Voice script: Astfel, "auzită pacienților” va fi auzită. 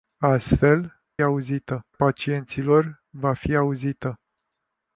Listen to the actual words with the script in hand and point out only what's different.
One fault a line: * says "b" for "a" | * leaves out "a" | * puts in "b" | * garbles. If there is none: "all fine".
all fine